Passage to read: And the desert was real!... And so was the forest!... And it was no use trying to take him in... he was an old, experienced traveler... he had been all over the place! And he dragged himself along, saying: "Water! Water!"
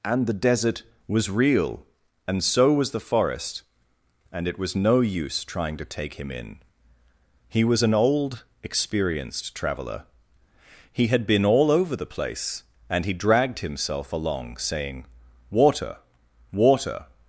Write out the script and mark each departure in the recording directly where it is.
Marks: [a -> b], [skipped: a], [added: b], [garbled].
And the desert was real!... And so was the forest!... And it was no use trying to take him in... he was an old, experienced traveler... he had been all over the place! And he dragged himself along, saying: "Water! Water!"